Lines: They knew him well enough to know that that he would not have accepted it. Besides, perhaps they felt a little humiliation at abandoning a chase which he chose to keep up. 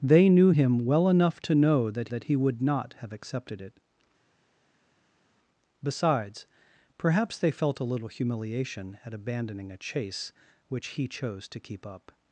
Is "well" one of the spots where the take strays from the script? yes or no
no